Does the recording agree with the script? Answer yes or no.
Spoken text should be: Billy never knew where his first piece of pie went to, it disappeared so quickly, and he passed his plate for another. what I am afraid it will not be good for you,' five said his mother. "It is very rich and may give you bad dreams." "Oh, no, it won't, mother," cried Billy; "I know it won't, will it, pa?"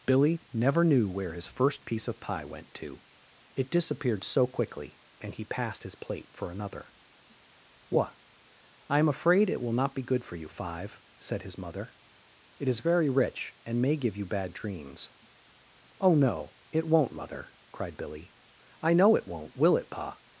yes